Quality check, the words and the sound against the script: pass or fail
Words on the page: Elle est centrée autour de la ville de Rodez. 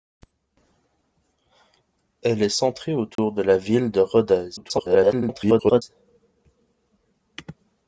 fail